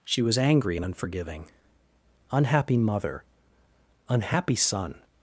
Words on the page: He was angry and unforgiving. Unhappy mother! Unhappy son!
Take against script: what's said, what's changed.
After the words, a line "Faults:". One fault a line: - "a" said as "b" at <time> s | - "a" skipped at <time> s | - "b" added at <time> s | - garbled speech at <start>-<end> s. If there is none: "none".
She was angry and unforgiving. Unhappy mother! Unhappy son!
Faults:
- "He" said as "She" at 0.0 s